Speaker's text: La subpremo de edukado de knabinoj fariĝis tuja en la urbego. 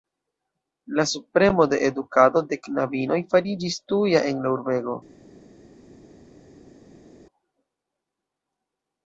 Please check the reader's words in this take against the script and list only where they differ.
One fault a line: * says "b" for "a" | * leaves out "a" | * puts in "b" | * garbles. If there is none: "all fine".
all fine